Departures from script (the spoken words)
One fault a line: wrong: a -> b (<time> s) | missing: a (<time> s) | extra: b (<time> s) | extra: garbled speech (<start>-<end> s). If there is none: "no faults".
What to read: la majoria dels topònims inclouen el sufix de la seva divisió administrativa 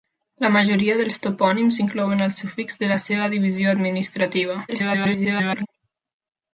extra: garbled speech (4.7-5.7 s)